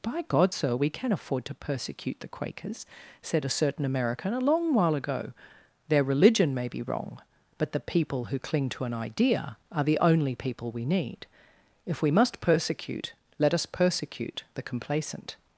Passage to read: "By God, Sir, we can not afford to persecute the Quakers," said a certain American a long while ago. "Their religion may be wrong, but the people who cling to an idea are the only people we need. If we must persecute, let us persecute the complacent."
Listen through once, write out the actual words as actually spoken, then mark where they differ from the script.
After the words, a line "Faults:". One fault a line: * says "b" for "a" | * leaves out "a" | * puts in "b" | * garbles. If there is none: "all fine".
"By God, Sir, we can afford to persecute the Quakers," said a certain American a long while ago. "Their religion may be wrong, but the people who cling to an idea are the only people we need. If we must persecute, let us persecute the complacent."
Faults:
* leaves out "not"